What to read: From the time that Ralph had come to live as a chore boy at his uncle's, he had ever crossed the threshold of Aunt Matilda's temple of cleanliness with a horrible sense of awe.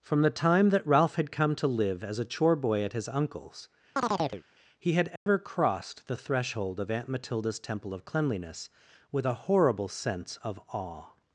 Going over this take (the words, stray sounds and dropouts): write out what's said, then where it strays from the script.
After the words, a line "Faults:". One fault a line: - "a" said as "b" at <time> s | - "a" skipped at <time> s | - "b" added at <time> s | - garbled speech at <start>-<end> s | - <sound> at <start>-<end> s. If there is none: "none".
From the time that Ralph had come to live as a chore boy at his uncle's, he had ever crossed the threshold of Aunt Matilda's temple of cleanliness with a horrible sense of awe.
Faults:
- chirp at 4.0-4.4 s
- dropout at 5.2-5.3 s